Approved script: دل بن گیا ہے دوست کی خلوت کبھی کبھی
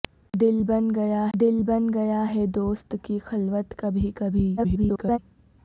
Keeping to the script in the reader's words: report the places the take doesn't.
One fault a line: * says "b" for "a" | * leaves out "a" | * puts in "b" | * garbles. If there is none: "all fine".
* puts in "دل بن گیا"
* garbles